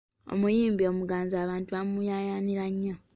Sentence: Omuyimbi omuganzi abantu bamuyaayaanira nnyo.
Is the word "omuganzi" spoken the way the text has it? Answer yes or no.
yes